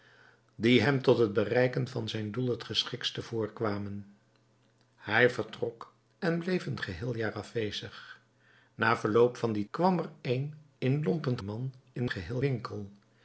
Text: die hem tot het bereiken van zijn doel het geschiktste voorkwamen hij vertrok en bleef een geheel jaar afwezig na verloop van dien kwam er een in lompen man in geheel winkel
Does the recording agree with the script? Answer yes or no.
yes